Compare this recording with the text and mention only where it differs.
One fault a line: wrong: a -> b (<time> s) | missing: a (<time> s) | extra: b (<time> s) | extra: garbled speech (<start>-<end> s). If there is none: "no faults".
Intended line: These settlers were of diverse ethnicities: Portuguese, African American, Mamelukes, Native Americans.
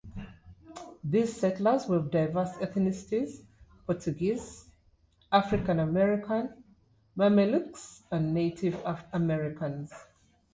extra: and (8.1 s)